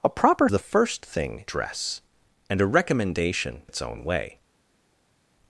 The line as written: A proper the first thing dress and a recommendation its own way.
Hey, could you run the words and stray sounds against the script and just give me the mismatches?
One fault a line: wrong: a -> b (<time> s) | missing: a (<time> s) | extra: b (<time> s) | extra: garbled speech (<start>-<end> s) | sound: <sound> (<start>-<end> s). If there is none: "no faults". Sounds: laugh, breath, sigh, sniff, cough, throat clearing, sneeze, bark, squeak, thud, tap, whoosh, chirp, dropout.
no faults